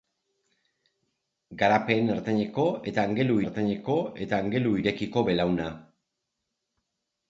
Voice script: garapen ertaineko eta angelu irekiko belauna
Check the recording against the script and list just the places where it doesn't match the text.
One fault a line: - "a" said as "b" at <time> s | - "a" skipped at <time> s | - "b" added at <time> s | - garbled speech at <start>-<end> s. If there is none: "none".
- "ertaineko eta angelu" added at 3.4 s